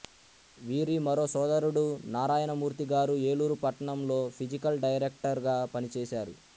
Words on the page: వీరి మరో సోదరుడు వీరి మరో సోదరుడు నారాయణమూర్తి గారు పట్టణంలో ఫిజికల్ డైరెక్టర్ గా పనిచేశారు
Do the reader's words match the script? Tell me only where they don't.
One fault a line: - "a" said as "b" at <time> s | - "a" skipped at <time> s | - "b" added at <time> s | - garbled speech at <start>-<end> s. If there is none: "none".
- "వీరి మరో సోదరుడు" skipped at 1.8 s
- "ఏలూరు" added at 3.3 s